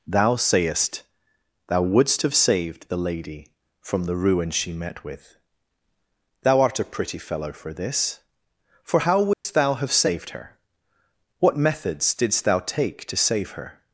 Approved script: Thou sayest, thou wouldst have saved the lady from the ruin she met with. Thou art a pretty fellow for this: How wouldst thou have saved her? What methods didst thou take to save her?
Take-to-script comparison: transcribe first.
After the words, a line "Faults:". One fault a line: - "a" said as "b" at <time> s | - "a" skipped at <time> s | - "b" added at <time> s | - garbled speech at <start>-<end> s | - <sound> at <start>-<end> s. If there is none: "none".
Thou sayest, thou wouldst have saved the lady from the ruin she met with. Thou art a pretty fellow for this: For how wouldst thou have saved her? What methods didst thou take to save her?
Faults:
- "For" added at 8.8 s
- dropout at 9.3-9.5 s